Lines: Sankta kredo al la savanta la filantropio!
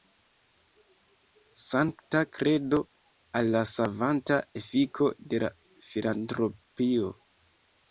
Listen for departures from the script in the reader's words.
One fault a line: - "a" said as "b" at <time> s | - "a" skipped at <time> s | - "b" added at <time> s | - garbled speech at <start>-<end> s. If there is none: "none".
- "efiko de" added at 4.6 s